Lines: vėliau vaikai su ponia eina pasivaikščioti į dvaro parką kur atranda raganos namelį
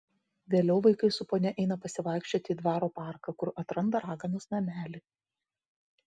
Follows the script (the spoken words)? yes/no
yes